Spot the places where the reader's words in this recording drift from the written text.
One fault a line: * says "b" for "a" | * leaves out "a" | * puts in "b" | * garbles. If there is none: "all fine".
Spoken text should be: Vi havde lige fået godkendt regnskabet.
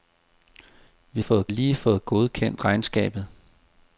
* says "fået" for "havde"